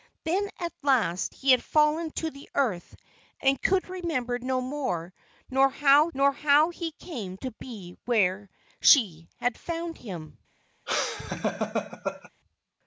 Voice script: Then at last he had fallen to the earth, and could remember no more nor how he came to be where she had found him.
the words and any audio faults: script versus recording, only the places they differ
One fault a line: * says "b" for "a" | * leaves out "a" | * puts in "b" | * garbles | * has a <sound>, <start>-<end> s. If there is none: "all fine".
* puts in "nor how"
* has a laugh, 10.9-12.3 s